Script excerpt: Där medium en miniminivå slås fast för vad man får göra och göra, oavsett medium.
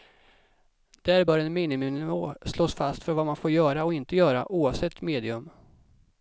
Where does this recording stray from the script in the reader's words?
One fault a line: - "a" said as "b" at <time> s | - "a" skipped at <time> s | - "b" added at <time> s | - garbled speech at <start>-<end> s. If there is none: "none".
- "medium" said as "bör" at 1.2 s
- "inte" added at 3.9 s